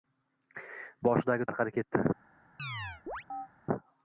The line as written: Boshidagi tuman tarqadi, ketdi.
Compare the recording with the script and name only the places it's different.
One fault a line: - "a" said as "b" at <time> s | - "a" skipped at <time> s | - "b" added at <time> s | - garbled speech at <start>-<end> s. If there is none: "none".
- "tuman" skipped at 1.5 s